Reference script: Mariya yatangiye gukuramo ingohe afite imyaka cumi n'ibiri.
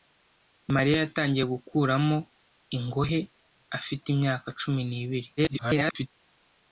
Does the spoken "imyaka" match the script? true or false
true